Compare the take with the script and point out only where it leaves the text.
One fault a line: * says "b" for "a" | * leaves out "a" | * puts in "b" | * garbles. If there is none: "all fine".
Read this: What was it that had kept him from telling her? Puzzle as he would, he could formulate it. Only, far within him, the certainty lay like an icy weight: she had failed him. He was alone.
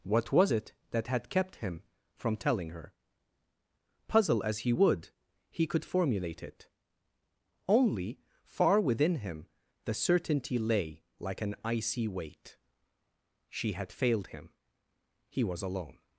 all fine